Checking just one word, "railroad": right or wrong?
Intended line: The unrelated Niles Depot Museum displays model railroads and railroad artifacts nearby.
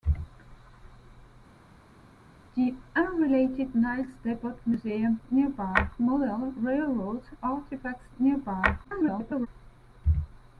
wrong